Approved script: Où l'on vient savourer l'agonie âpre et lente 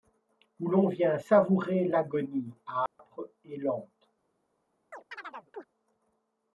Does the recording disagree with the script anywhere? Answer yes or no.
no